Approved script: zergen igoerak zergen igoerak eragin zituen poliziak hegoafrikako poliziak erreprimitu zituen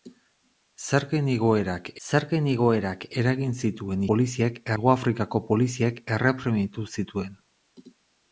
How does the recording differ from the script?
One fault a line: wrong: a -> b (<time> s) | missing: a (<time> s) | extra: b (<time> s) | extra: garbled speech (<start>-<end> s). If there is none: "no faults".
no faults